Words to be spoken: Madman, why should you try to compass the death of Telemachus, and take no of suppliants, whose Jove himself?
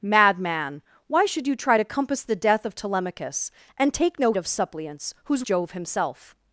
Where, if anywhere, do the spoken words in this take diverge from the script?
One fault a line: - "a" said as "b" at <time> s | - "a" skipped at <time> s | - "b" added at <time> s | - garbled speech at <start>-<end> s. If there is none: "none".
none